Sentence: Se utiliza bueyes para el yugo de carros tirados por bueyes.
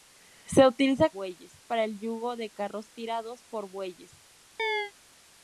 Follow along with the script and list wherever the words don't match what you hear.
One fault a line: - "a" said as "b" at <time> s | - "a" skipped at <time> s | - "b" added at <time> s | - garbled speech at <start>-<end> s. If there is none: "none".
none